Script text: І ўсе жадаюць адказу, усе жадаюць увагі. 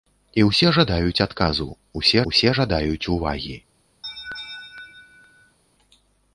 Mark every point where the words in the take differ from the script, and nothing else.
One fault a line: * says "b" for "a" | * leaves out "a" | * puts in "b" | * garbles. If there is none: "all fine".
* puts in "усе"